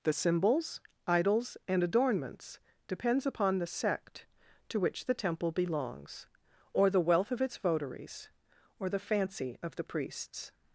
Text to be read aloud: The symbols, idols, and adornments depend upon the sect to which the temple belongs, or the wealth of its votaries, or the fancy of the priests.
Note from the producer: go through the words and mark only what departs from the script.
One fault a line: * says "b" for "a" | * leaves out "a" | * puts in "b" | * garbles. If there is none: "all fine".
* says "depends" for "depend"